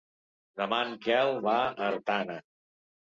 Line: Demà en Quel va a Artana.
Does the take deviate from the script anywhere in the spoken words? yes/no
no